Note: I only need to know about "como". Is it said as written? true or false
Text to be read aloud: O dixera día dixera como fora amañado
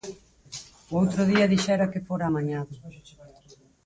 false